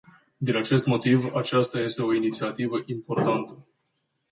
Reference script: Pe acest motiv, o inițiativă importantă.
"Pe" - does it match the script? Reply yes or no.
no